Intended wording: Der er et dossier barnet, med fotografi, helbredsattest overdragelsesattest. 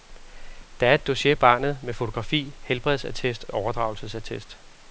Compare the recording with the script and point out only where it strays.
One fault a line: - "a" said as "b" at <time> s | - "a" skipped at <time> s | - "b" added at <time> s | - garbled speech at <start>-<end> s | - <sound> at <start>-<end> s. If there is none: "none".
none